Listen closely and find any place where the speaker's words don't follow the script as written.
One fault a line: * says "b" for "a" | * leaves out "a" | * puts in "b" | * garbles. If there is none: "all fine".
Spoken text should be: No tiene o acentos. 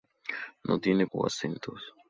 all fine